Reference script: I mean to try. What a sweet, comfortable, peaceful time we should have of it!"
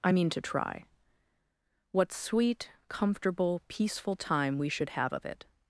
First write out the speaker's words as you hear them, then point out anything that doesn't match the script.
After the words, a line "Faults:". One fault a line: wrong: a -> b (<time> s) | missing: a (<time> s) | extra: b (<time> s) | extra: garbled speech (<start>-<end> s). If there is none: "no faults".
I mean to try. What sweet, comfortable, peaceful time we should have of it!"
Faults:
missing: a (2.1 s)